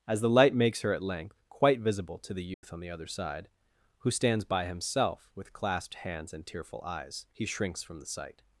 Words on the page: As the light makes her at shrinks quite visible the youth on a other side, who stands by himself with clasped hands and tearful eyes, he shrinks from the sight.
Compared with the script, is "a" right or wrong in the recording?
wrong